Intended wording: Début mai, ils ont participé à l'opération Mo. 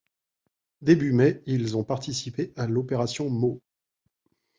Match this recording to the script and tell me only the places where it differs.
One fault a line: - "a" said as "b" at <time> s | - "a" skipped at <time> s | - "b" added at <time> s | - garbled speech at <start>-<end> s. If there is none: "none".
none